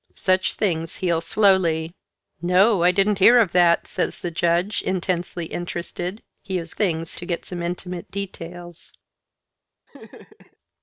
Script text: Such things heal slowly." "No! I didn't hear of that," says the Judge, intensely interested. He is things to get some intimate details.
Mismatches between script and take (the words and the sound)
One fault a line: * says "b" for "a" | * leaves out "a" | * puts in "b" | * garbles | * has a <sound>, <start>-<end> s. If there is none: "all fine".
* has a laugh, 9.9-10.6 s